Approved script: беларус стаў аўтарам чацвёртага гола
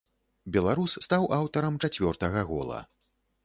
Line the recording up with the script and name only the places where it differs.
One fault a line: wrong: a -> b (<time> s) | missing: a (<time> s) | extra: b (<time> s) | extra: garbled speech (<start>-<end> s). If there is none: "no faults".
no faults